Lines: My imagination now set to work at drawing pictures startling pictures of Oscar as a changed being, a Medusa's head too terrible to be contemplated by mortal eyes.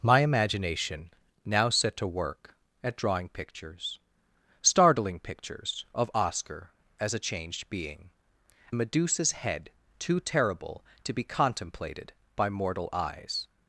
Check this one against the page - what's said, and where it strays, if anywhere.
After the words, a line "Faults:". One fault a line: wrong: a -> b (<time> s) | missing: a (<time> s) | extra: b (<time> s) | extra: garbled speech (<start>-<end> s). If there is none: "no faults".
My imagination now set to work at drawing pictures startling pictures of Oscar as a changed being, a Medusa's head too terrible to be contemplated by mortal eyes.
Faults:
no faults